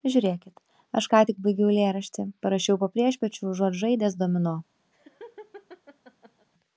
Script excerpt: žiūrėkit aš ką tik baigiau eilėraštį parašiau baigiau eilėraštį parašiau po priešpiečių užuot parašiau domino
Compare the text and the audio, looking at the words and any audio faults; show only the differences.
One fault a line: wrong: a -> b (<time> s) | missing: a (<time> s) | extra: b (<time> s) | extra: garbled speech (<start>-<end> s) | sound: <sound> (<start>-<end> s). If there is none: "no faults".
missing: baigiau eilėraštį parašiau (2.8 s)
wrong: parašiau -> žaidęs (3.8 s)
sound: laugh (4.9-6.5 s)